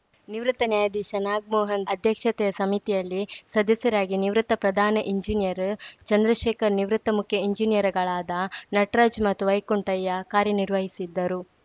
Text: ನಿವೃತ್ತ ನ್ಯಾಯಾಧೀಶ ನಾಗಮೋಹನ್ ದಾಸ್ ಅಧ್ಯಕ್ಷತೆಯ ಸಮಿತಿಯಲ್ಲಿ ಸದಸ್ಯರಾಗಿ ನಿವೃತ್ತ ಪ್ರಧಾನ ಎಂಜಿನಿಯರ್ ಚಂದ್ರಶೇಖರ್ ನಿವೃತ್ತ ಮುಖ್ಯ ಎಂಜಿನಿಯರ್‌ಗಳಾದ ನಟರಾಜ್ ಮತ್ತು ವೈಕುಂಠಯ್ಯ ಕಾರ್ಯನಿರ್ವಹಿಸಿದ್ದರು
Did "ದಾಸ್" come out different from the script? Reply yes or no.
yes